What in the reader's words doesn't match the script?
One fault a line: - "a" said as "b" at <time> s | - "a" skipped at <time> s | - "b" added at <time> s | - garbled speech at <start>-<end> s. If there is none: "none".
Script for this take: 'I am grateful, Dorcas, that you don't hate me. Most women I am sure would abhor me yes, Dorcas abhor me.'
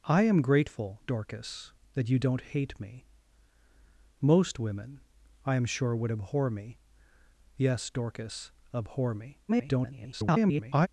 - garbled speech at 9.5-10.9 s